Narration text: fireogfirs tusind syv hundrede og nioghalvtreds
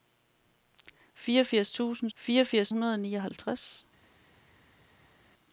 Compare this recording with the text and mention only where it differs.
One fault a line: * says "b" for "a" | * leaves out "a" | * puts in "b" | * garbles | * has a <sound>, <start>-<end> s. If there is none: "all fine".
* says "fireogfirs" for "syv"